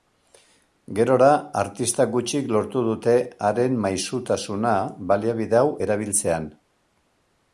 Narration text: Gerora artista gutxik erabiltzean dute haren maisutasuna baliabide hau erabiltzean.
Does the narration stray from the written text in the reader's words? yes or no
yes